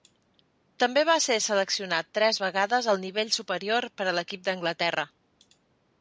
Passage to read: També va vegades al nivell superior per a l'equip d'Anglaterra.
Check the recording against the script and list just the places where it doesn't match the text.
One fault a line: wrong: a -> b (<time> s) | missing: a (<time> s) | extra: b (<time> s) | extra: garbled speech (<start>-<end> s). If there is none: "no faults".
extra: ser seleccionat tres (1.2 s)